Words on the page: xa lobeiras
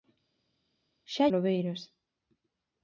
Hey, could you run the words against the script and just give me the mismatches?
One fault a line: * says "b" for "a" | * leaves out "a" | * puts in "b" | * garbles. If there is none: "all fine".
all fine